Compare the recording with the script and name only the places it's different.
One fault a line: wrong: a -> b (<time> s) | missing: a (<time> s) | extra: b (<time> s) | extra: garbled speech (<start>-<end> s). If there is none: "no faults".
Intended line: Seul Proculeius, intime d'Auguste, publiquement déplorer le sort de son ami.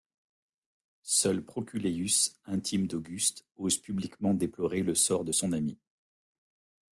extra: ose (3.5 s)